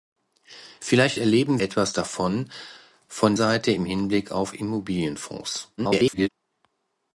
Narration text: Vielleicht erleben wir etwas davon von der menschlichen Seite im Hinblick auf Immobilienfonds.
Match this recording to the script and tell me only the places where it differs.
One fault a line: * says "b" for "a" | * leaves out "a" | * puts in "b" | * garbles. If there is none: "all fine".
* leaves out "wir"
* leaves out "der menschlichen"
* garbles